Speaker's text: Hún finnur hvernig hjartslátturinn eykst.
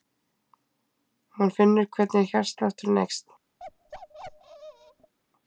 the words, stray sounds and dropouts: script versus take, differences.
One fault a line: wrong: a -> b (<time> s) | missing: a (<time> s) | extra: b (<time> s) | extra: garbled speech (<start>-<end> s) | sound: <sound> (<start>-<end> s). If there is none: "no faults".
sound: bark (3.6-5.1 s)